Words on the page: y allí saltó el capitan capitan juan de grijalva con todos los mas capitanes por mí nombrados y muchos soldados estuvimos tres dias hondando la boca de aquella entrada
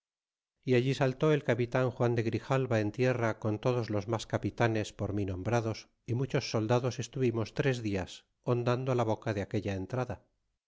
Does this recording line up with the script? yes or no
no